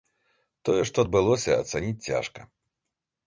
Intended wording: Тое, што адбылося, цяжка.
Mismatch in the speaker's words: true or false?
true